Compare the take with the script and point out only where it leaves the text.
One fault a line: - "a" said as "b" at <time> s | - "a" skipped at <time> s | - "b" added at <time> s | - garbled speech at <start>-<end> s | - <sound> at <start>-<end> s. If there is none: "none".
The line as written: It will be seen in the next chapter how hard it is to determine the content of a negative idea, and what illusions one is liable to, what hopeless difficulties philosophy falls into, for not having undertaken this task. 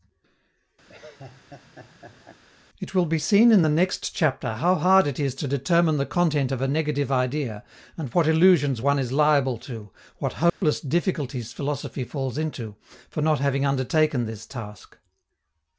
- laugh at 0.9-2.4 s
- dropout at 10.5-10.6 s